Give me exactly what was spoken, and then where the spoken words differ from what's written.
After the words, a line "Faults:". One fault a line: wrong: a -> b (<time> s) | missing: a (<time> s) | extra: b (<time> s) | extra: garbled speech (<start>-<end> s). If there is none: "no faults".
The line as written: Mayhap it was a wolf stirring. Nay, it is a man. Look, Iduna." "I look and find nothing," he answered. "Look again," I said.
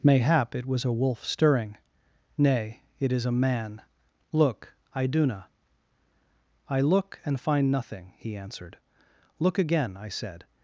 Mayhap it was a wolf stirring. Nay, it is a man. Look, Iduna." "I look and find nothing," he answered. "Look again," I said.
Faults:
no faults